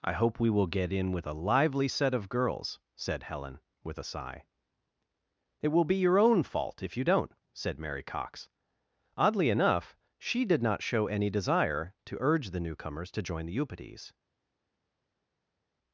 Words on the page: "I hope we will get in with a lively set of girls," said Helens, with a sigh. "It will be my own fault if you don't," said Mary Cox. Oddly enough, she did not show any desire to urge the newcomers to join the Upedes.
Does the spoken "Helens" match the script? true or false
false